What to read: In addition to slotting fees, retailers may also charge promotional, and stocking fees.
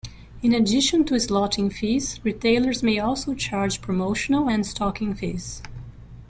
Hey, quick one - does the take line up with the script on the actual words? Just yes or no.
yes